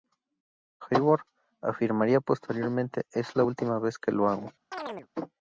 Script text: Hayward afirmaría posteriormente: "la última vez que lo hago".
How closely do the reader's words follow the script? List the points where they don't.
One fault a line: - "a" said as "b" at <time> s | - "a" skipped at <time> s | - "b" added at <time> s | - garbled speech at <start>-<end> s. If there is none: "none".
- "es" added at 3.1 s